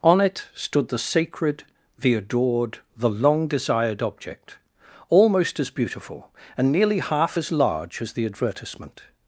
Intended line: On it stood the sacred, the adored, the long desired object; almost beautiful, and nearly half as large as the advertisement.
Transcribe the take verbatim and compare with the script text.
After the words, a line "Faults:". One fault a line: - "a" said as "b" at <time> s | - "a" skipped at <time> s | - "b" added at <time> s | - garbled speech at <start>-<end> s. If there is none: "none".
On it stood the sacred, the adored, the long desired object; almost as beautiful, and nearly half as large as the advertisement.
Faults:
- "as" added at 5.6 s